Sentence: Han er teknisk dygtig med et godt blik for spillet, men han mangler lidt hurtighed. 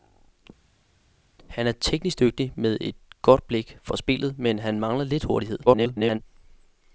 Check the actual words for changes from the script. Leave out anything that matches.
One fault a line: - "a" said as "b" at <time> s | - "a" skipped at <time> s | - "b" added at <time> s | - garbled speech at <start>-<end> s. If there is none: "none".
- garbled speech at 5.7-6.2 s